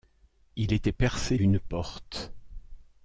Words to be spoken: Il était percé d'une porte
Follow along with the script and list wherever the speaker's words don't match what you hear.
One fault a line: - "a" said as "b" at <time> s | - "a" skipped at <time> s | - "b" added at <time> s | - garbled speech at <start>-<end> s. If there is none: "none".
none